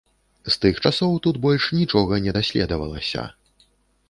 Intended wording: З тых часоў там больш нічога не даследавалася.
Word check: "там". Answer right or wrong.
wrong